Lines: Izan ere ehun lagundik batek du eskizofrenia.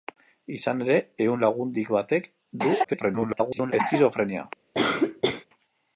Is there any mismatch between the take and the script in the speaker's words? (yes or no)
yes